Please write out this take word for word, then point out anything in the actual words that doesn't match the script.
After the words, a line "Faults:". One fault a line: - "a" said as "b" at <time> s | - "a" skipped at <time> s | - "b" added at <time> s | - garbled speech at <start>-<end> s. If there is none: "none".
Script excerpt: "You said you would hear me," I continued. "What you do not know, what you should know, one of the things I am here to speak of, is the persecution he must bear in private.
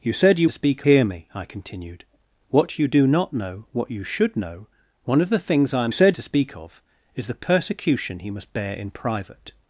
"You said you speak hear me," I continued. "What you do not know, what you should know, one of the things I am said to speak of, is the persecution he must bear in private.
Faults:
- "would" said as "speak" at 0.5 s
- "here" said as "said" at 5.9 s